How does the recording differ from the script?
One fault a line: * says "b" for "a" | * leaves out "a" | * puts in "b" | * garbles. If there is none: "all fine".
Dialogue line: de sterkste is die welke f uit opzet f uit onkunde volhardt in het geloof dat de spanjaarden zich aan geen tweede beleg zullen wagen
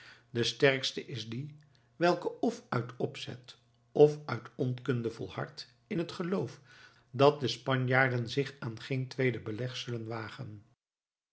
all fine